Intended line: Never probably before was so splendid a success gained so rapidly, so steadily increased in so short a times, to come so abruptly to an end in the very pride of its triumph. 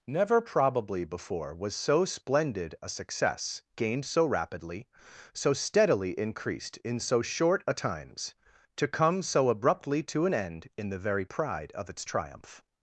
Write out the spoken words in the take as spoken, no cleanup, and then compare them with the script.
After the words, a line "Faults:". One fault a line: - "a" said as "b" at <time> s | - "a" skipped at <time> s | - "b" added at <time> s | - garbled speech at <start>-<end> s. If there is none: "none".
Never probably before was so splendid a success gained so rapidly, so steadily increased in so short a times, to come so abruptly to an end in the very pride of its triumph.
Faults:
none